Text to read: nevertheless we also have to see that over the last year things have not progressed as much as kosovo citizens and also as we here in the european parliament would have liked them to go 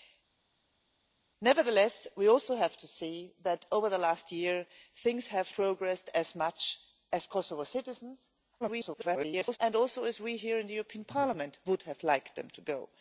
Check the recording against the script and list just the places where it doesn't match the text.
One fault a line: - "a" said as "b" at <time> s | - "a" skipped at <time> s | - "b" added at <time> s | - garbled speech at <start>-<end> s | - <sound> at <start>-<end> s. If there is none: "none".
- "not" skipped at 5.6 s
- garbled speech at 8.6-9.6 s